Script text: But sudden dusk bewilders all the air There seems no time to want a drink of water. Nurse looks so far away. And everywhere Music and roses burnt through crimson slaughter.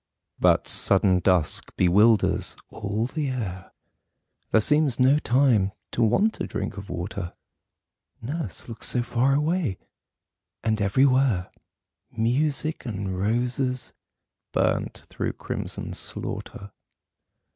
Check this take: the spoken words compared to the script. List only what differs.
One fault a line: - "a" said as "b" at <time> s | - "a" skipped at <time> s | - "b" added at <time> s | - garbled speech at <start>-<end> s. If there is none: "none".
none